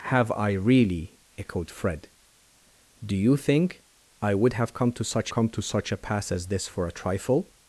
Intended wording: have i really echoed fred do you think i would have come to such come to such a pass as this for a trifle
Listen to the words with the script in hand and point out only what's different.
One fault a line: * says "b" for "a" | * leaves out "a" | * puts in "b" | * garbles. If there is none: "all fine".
all fine